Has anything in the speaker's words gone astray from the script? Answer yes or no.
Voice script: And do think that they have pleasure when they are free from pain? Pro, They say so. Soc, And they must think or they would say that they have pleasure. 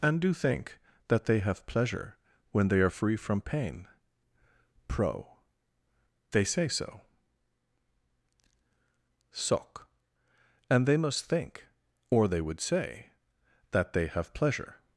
no